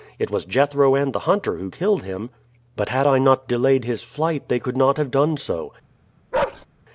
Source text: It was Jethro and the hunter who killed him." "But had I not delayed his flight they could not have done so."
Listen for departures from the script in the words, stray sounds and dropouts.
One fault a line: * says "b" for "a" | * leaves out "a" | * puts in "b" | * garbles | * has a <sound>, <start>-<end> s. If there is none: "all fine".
* has a bark, 6.3-6.7 s